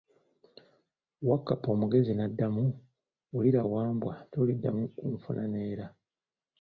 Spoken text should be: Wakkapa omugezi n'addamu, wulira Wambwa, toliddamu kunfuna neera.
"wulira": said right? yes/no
yes